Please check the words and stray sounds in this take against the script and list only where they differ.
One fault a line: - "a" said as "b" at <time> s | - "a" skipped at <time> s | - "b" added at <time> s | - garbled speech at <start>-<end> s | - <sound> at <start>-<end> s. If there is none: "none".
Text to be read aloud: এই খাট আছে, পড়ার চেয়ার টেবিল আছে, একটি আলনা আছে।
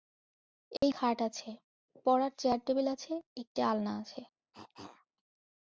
- dropout at 0.8-0.8 s
- cough at 4.5-5.1 s